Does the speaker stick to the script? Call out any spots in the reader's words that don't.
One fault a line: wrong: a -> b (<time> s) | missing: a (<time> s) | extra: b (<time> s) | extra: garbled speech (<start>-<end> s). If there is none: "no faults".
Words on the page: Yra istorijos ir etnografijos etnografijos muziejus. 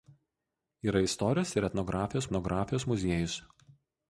no faults